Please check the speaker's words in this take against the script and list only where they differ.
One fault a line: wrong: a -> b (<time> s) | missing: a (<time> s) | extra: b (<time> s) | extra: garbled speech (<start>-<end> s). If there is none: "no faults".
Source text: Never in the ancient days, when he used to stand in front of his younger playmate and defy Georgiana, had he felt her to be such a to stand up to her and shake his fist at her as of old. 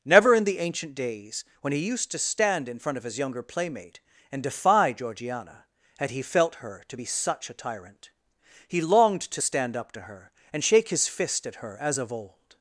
extra: tyrant He longed (7.6 s)